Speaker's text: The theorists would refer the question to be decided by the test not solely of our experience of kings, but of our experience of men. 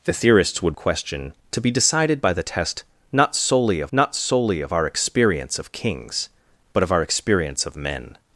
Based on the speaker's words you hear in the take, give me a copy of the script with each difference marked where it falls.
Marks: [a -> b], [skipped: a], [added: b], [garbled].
The theorists would [skipped: refer the] question to be decided by the test not solely of [added: not solely of] our experience of kings, but of our experience of men.